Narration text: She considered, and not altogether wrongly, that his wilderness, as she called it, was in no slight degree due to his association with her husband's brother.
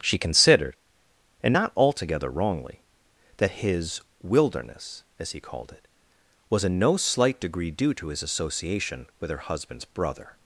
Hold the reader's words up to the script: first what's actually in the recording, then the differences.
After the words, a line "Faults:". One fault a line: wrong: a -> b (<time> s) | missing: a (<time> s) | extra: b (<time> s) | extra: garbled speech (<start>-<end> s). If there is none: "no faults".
She considered, and not altogether wrongly, that his wilderness, as he called it, was in no slight degree due to his association with her husband's brother.
Faults:
wrong: she -> he (5.3 s)